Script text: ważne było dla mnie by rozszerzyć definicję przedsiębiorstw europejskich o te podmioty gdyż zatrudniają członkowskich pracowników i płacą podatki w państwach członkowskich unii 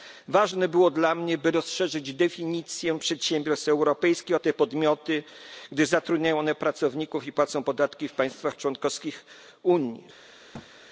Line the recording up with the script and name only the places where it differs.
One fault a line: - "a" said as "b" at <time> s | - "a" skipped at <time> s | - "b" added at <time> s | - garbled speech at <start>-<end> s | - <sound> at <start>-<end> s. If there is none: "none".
- "członkowskich" said as "one" at 6.4 s
- thud at 10.5-10.7 s